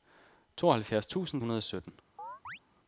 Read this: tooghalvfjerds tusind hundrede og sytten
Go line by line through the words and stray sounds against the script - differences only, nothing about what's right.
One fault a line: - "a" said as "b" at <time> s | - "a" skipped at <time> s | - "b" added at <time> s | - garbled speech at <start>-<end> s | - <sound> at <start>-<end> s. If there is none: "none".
- chirp at 2.2-2.6 s